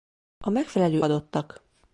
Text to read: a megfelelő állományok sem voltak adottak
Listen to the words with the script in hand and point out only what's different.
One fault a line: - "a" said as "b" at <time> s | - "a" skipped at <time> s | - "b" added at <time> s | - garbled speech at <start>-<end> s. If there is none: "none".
- "állományok sem voltak" skipped at 1.1 s